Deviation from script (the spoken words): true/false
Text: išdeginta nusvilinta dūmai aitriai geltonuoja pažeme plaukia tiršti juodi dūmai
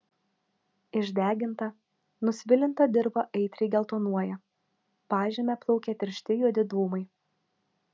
true